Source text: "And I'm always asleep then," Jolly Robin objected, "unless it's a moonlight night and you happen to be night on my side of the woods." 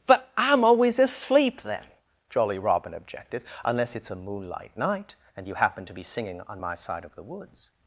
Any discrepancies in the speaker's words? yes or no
yes